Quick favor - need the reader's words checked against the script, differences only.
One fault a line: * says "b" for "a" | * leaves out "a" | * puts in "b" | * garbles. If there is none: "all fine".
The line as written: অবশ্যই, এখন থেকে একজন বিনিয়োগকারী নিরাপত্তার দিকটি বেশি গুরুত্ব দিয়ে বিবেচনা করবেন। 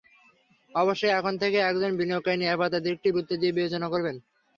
* leaves out "বেশি"